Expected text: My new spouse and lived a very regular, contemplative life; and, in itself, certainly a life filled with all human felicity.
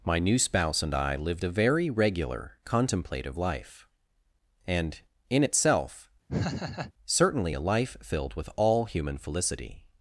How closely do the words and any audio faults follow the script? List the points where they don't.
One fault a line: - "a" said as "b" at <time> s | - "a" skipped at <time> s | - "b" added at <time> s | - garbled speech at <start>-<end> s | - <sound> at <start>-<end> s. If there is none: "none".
- "I" added at 0.9 s
- laugh at 6.3-6.9 s